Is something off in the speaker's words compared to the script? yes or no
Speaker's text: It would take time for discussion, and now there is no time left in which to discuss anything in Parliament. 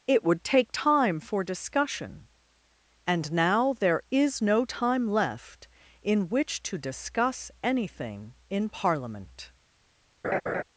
no